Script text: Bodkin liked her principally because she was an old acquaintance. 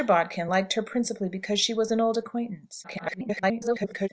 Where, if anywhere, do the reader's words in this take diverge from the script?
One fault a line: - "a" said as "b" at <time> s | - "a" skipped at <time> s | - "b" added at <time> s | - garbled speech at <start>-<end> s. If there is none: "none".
- garbled speech at 2.8-4.1 s